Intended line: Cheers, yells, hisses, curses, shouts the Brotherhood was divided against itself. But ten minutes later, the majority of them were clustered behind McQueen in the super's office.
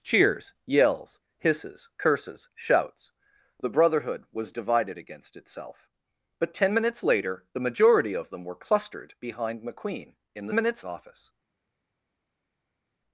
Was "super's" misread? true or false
true